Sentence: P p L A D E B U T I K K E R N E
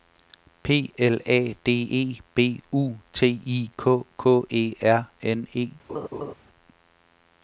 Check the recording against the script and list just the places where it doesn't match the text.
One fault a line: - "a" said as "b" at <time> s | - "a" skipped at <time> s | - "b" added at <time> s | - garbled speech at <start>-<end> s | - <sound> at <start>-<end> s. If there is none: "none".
- "p" skipped at 0.9 s
- laugh at 5.9-6.3 s